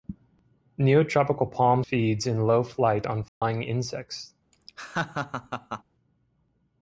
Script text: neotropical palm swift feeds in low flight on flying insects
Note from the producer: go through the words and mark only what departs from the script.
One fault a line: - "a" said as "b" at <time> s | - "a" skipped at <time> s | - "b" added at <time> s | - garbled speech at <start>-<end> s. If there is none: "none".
- "swift" skipped at 1.8 s